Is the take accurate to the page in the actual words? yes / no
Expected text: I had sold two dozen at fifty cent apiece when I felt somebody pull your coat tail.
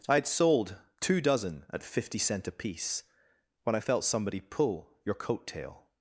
yes